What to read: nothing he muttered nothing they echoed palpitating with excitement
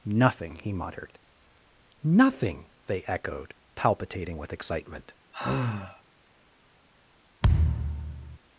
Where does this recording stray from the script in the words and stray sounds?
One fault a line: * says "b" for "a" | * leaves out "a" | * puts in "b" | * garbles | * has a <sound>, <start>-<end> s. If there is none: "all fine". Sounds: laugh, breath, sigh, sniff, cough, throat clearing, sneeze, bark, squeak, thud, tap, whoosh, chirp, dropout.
* has a sigh, 5.3-6.0 s
* has a thud, 7.4-8.4 s